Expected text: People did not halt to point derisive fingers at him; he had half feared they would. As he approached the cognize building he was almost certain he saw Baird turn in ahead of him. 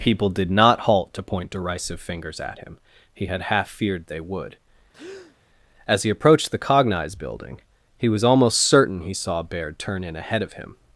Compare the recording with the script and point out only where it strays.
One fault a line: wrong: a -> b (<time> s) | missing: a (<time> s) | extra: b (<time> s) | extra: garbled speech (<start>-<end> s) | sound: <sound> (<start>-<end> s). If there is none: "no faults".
sound: breath (4.9-5.4 s)